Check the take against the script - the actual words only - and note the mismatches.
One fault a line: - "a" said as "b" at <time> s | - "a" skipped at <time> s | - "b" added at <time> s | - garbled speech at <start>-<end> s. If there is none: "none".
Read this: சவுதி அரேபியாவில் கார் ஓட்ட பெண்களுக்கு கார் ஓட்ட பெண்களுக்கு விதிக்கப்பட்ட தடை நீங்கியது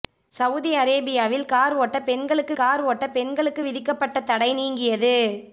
none